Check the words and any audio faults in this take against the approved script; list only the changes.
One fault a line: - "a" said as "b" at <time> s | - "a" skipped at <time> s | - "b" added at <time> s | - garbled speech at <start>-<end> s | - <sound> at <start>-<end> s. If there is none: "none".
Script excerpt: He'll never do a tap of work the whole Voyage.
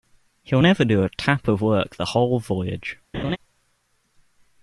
- laugh at 3.1-3.4 s